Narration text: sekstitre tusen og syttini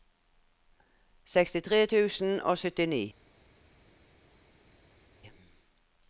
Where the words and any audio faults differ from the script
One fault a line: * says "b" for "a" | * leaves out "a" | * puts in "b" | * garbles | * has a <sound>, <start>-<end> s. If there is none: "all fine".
all fine